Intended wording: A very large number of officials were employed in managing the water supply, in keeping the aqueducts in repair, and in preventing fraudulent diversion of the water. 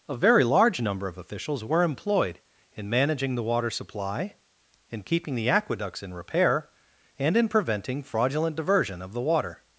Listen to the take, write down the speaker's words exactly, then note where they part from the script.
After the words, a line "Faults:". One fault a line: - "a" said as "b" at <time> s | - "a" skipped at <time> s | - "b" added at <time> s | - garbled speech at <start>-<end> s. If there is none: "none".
A very large number of officials were employed in managing the water supply, in keeping the aqueducts in repair, and in preventing fraudulent diversion of the water.
Faults:
none